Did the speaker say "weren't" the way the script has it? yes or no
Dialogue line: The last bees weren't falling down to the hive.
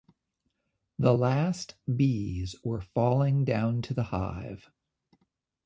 no